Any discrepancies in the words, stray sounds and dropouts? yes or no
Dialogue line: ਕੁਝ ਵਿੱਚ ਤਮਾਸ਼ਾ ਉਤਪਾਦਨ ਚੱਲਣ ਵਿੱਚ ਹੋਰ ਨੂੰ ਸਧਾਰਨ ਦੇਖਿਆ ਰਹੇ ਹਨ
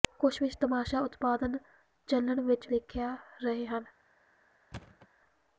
yes